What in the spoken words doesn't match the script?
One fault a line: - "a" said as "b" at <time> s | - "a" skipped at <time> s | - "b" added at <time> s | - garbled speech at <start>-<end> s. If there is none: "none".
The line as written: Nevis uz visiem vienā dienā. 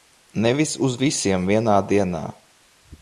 none